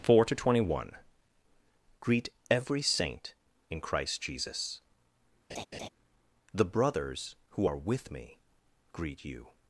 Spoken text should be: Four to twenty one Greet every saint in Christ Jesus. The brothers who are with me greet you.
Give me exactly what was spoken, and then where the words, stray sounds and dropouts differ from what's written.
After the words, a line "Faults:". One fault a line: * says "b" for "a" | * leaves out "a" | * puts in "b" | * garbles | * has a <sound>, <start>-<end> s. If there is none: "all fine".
Four to twenty one Greet every saint in Christ Jesus. The brothers who are with me greet you.
Faults:
* has a laugh, 5.5-5.9 s